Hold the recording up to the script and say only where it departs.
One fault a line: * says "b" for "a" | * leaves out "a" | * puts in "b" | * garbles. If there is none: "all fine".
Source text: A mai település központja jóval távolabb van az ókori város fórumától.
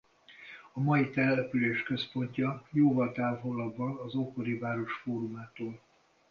all fine